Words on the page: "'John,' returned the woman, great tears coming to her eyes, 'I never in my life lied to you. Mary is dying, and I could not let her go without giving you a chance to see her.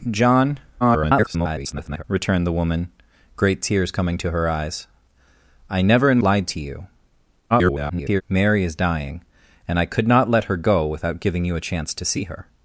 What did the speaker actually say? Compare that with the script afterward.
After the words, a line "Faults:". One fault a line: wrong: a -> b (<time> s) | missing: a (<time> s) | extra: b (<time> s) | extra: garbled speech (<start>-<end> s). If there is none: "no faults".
"'John,' [garbled] returned the woman, great tears coming to her eyes, 'I never in lied to you. [garbled] Mary is dying, and I could not let her go without giving you a chance to see her.
Faults:
extra: garbled speech (0.8-2.0 s)
missing: my life (6.2 s)
extra: garbled speech (7.5-8.2 s)